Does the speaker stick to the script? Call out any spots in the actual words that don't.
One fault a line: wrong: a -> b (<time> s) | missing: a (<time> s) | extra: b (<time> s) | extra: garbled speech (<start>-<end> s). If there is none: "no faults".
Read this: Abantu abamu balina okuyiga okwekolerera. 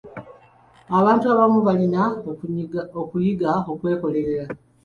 no faults